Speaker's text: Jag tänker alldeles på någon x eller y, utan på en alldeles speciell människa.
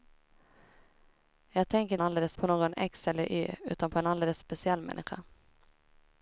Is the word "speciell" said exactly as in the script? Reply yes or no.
yes